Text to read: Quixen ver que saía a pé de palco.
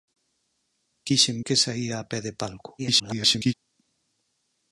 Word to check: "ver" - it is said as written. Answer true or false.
false